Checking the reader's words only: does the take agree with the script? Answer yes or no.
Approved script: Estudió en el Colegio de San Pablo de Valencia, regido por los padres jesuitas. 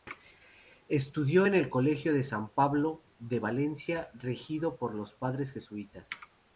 yes